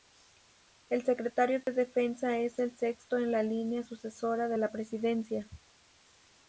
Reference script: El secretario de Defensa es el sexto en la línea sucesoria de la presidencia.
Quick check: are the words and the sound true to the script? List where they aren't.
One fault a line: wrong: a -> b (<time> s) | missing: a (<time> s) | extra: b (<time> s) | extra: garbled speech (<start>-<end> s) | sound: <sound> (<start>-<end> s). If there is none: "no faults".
sound: dropout (1.6-1.7 s)